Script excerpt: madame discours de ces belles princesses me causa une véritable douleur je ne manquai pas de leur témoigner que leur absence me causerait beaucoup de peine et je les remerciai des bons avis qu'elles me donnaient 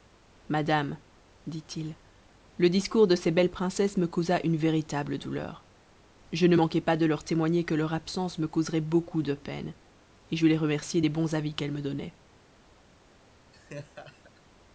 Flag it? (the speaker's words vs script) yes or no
yes